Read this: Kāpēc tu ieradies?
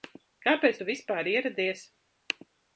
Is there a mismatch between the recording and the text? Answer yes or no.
yes